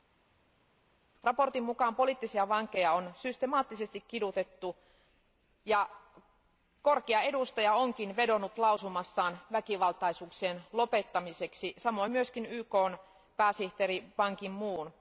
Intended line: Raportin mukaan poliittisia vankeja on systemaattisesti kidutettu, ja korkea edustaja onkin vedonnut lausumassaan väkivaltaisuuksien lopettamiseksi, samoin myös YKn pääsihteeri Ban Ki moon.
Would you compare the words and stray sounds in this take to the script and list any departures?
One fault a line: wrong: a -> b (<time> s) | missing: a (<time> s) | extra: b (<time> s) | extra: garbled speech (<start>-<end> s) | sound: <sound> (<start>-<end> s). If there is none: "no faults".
no faults